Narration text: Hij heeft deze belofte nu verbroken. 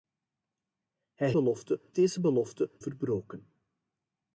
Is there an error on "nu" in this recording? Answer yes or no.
yes